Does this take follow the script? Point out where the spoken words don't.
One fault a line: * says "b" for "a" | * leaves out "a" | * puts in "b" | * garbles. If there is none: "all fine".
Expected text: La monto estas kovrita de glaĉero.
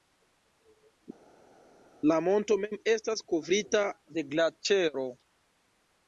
* puts in "mem"